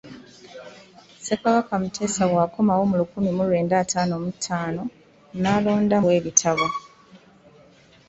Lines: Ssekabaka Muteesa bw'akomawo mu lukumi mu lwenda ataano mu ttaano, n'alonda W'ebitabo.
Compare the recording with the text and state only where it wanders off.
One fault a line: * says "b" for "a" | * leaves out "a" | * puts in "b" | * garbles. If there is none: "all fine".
all fine